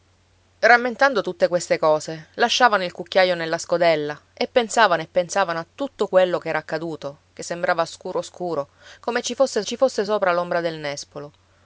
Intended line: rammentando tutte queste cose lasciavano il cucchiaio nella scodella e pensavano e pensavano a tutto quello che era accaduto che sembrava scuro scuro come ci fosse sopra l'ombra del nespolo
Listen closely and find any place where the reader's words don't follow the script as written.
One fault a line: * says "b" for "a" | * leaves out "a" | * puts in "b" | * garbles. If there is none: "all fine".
* puts in "ci fosse"